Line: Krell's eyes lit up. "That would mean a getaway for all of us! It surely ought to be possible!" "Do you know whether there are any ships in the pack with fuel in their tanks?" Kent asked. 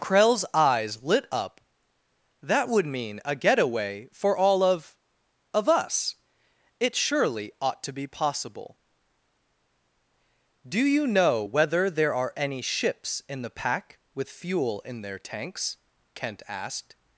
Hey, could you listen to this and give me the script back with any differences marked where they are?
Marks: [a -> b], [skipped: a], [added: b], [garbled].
Krell's eyes lit up. "That would mean a getaway for all of [added: of] us! It surely ought to be possible!" "Do you know whether there are any ships in the pack with fuel in their tanks?" Kent asked.